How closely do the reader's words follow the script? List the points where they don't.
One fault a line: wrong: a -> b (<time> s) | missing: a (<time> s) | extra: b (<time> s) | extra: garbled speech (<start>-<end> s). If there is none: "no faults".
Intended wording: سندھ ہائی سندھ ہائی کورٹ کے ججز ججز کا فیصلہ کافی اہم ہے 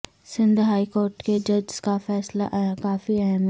missing: سندھ ہائی (0.8 s)
missing: ججز (1.8 s)